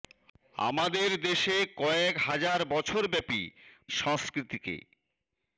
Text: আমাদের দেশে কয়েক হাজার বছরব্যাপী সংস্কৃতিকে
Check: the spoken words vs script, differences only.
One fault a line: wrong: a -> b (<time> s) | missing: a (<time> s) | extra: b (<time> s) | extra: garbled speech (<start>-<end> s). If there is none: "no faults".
no faults